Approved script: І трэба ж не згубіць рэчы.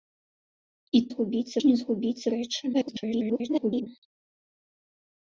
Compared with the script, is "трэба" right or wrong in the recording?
wrong